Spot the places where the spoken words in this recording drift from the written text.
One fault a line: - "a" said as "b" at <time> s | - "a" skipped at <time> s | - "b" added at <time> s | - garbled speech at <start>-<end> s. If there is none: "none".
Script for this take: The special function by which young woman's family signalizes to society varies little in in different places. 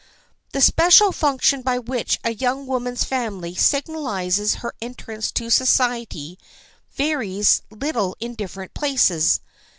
- "a" added at 2.2 s
- "her entrance" added at 4.6 s
- "in" skipped at 8.4 s